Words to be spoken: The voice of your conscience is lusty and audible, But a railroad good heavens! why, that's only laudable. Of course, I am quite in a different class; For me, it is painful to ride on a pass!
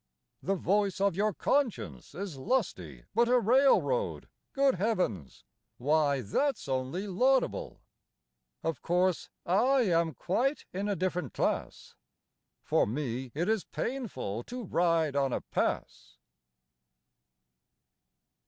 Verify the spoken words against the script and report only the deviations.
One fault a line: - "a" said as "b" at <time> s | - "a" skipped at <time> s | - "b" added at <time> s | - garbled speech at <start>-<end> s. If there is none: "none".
- "and audible" skipped at 3.0 s